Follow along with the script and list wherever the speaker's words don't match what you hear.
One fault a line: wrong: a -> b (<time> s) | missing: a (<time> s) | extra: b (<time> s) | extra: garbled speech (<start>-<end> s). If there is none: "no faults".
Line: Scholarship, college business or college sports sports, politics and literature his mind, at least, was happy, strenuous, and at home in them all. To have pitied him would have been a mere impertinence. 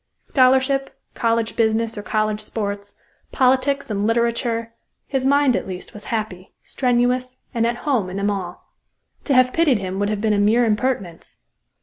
missing: sports (3.0 s)